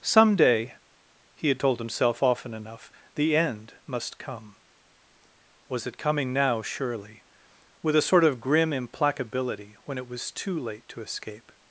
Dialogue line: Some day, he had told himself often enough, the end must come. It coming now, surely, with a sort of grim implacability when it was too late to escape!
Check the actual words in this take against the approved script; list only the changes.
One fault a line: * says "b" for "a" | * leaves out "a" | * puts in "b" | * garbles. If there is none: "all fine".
* puts in "Was"